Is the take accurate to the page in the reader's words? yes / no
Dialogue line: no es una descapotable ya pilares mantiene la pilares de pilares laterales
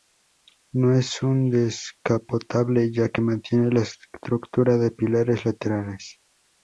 no